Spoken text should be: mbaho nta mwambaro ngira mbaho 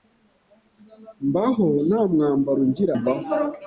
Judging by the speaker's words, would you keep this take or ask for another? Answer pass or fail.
pass